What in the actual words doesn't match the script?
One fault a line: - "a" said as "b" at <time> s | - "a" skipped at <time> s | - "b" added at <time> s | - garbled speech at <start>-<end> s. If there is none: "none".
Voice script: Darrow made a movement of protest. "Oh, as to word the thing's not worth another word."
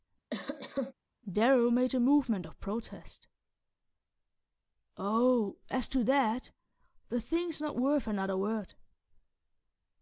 - "word" said as "that" at 6.0 s